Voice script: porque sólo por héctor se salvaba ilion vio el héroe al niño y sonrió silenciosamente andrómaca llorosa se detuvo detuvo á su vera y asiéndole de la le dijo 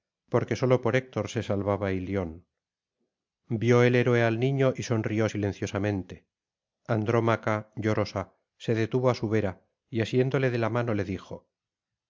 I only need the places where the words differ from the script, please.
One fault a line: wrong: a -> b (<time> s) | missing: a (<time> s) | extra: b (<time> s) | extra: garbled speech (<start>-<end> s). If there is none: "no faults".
missing: detuvo (9.1 s)
extra: mano (10.7 s)